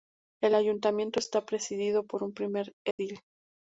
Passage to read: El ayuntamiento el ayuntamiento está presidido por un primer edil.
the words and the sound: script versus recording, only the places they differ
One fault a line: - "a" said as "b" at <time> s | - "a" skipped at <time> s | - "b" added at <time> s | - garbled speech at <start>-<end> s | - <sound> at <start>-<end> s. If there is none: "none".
- "el ayuntamiento" skipped at 1.2 s
- dropout at 2.9-3.0 s